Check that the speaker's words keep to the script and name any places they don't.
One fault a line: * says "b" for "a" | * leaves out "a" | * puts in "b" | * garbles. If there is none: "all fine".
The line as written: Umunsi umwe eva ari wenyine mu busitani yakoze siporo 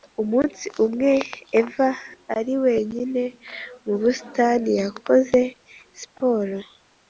all fine